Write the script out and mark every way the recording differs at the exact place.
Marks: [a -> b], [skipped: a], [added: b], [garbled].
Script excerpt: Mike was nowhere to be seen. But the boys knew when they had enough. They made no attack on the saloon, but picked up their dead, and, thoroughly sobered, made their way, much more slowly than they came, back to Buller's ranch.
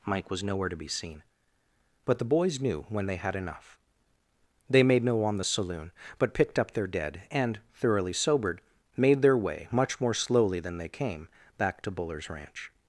Mike was nowhere to be seen. But the boys knew when they had enough. They made no [skipped: attack] on the saloon, but picked up their dead, and, thoroughly sobered, made their way, much more slowly than they came, back to Buller's ranch.